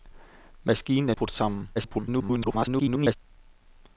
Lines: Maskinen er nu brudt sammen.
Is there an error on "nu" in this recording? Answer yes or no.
yes